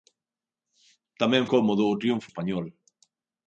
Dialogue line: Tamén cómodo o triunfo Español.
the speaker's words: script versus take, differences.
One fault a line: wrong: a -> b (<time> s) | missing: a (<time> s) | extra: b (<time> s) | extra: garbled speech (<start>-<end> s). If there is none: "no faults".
no faults